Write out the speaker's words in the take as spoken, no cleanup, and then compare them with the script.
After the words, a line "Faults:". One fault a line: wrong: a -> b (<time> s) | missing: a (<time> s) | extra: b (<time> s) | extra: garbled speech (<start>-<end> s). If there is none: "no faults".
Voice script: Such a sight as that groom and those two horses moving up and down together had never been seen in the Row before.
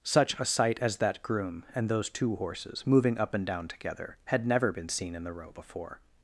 Such a sight as that groom and those two horses moving up and down together had never been seen in the Row before.
Faults:
no faults